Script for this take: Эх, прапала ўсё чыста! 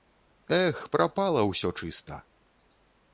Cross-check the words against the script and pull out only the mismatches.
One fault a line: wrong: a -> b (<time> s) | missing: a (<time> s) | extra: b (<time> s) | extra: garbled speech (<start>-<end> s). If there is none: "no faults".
no faults